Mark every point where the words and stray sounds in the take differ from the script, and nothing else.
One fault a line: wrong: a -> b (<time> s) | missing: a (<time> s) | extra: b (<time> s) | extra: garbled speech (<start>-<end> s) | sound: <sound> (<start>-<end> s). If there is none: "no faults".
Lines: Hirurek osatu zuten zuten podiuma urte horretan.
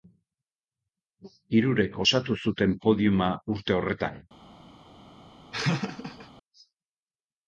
missing: zuten (2.8 s)
sound: laugh (5.5-6.3 s)